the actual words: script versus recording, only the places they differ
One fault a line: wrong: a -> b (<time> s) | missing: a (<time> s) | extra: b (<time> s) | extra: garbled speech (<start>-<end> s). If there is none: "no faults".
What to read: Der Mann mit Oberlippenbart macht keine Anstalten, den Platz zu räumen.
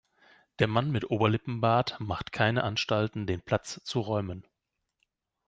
no faults